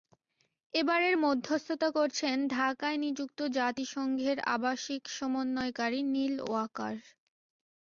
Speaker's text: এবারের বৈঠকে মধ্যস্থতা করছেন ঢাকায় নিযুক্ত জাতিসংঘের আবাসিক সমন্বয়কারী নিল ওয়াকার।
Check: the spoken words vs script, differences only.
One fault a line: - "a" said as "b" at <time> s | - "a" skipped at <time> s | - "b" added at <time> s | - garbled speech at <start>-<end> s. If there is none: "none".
- "বৈঠকে" skipped at 1.1 s